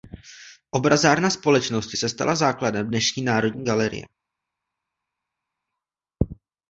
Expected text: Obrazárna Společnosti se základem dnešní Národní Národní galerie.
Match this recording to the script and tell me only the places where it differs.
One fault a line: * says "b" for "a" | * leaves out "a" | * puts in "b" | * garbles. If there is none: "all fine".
* puts in "stala"
* leaves out "Národní"